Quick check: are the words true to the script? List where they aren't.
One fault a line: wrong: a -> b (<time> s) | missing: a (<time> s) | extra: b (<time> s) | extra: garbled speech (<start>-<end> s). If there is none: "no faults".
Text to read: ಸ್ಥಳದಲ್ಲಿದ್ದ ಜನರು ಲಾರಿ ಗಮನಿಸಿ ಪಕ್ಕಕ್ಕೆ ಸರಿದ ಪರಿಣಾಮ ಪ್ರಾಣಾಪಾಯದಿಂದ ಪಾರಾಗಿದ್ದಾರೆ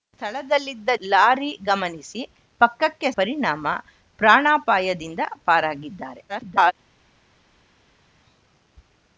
missing: ಜನರು (0.9 s)
missing: ಸರಿದ (3.1 s)
extra: garbled speech (6.3-6.7 s)